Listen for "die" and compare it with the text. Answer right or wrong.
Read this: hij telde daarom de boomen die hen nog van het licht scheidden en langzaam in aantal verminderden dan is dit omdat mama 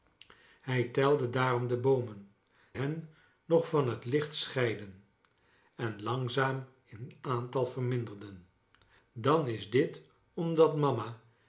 wrong